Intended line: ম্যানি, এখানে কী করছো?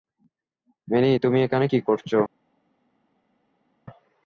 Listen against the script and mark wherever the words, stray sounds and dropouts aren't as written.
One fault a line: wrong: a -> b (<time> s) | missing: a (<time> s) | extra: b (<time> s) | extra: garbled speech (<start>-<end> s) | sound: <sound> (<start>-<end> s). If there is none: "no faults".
extra: তুমি (1.2 s)